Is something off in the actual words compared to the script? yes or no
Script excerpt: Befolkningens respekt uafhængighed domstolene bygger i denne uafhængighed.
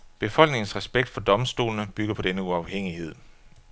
yes